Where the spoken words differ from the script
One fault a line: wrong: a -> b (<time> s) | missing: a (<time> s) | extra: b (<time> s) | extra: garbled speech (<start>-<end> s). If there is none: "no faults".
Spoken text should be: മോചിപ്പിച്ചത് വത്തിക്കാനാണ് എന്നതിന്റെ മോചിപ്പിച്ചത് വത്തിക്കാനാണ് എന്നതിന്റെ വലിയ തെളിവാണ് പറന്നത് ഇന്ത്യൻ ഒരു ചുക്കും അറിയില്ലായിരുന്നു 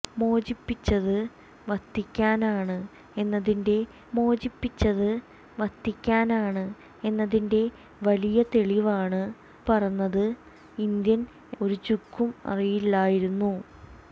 no faults